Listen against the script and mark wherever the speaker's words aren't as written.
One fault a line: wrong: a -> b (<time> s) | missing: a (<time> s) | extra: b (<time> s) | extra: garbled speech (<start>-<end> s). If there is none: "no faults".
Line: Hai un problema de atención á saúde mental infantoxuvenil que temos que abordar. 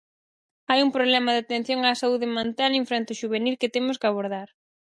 no faults